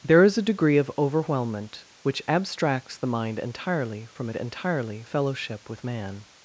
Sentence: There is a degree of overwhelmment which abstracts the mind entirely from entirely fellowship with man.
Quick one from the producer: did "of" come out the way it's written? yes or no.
yes